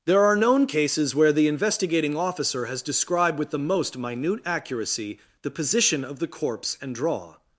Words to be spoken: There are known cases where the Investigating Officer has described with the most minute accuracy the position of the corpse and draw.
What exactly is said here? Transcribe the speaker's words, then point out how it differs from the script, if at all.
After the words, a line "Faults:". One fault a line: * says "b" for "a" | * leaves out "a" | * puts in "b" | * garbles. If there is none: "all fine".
There are known cases where the Investigating Officer has described with the most minute accuracy the position of the corpse and draw.
Faults:
all fine